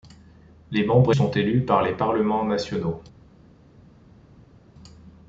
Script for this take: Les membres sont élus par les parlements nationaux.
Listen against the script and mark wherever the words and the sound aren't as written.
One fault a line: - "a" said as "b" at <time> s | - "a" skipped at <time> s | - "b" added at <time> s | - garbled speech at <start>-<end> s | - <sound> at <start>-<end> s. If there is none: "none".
none